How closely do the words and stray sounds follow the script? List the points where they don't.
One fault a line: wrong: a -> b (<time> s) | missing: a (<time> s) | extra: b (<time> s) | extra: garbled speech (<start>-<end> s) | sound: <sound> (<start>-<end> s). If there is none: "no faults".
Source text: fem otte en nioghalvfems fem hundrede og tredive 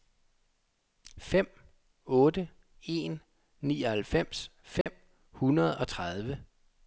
sound: dropout (4.8-4.9 s)